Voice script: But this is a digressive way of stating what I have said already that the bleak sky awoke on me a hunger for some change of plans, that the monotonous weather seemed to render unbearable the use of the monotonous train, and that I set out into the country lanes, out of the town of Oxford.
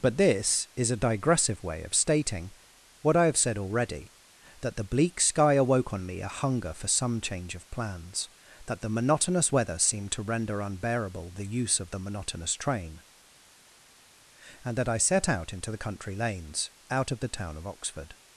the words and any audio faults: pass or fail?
pass